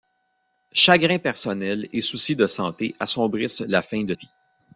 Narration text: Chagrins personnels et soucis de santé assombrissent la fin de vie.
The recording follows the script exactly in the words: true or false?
true